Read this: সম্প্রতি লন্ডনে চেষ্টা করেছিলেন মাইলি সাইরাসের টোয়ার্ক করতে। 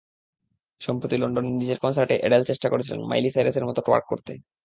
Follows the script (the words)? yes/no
no